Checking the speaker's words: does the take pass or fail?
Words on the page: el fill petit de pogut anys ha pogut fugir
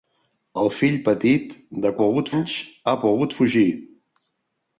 pass